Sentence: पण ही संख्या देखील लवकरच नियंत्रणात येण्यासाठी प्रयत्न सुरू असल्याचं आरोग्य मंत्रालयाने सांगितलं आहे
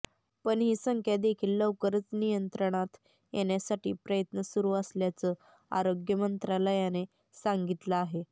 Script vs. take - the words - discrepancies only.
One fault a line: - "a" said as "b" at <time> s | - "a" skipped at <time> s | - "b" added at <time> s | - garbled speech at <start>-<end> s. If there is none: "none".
none